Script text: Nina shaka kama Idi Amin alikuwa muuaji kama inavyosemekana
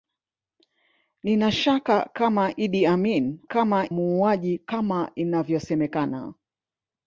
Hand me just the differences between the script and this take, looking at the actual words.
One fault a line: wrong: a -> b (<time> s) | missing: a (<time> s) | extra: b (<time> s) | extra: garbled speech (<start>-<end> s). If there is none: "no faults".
wrong: alikuwa -> kama (3.5 s)